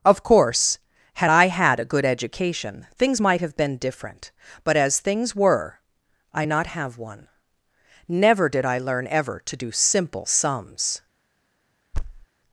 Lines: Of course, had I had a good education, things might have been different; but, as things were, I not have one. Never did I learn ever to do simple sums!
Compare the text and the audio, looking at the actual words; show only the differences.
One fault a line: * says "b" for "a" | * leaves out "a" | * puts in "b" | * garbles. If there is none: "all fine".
all fine